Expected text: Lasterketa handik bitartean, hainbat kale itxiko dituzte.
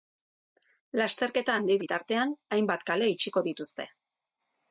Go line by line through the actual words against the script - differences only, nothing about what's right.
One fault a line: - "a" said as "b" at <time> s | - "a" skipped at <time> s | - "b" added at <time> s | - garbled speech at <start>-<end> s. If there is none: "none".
none